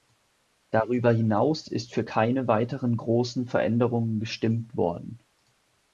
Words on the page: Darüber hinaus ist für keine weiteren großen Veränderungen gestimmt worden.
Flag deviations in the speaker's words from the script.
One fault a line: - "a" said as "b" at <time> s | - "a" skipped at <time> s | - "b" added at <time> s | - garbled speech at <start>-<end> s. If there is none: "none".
none